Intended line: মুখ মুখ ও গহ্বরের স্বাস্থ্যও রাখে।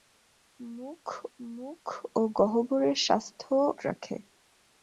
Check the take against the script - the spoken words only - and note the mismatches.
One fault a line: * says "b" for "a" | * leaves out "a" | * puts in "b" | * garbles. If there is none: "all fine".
all fine